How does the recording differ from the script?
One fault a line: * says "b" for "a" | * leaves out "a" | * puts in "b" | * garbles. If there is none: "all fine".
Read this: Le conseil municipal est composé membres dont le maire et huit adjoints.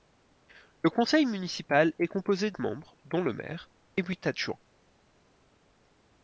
all fine